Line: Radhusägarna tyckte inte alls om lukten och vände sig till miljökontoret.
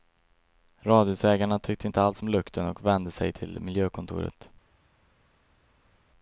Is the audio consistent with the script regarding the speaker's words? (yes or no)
yes